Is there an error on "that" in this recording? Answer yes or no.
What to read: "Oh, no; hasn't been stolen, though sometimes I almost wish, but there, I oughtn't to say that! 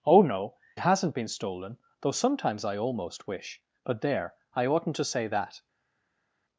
no